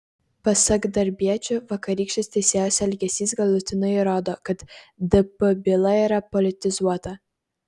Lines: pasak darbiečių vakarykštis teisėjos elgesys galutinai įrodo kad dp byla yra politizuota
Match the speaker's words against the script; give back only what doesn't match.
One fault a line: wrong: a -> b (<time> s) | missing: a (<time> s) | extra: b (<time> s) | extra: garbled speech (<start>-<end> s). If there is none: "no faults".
no faults